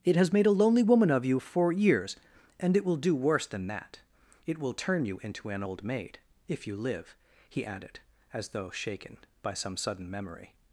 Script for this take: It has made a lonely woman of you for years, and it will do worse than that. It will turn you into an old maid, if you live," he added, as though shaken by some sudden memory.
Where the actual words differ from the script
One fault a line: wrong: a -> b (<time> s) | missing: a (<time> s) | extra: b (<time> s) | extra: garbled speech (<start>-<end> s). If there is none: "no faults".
no faults